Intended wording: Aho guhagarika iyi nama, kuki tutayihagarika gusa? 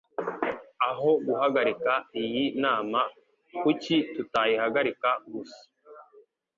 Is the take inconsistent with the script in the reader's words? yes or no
no